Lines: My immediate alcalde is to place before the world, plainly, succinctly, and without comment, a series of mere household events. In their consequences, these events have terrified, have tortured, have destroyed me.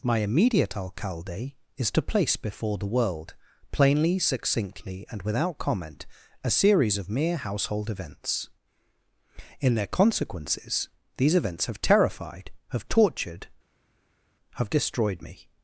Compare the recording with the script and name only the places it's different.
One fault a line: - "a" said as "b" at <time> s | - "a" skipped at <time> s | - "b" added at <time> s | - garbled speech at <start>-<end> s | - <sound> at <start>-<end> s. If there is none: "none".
none